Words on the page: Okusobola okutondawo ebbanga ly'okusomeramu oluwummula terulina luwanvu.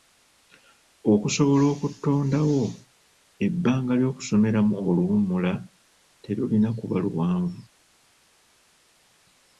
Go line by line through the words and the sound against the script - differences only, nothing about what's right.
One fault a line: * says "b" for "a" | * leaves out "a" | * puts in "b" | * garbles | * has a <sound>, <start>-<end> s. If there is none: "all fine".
* puts in "kuba"